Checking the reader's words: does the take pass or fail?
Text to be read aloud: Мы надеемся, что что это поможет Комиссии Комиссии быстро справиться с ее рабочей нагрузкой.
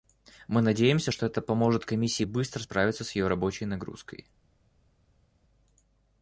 fail